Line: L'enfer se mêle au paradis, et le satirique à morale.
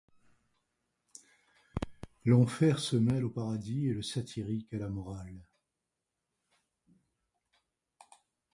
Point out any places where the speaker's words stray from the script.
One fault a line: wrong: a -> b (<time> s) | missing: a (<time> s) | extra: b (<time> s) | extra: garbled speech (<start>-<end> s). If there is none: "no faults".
extra: la (4.8 s)